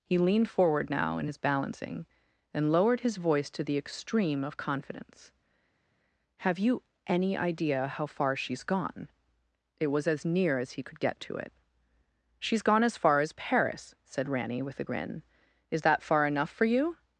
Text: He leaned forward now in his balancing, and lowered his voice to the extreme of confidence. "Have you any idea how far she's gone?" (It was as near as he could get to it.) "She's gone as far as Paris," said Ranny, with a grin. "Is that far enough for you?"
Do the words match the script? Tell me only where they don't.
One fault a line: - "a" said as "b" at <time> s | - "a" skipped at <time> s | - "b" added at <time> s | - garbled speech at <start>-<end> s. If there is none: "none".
none